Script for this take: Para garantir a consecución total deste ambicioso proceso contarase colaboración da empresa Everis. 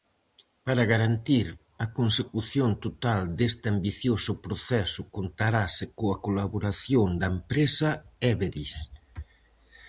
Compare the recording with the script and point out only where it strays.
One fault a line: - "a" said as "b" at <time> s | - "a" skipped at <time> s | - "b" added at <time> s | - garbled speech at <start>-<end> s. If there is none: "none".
- "coa" added at 6.0 s